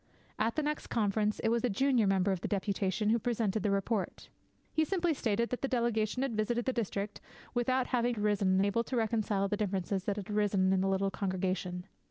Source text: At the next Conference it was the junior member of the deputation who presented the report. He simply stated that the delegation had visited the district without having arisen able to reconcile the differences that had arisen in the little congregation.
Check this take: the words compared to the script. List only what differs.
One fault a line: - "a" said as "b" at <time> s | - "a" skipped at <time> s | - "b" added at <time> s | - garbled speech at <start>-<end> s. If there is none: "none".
none